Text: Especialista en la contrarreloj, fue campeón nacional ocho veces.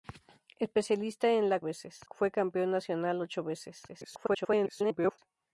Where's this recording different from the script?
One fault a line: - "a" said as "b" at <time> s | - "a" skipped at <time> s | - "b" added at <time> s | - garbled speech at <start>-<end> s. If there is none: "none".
- "contrarreloj" said as "veces" at 1.6 s
- garbled speech at 3.9-5.2 s